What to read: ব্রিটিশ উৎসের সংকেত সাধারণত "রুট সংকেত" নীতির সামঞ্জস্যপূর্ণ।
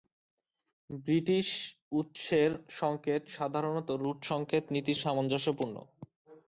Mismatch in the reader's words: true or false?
false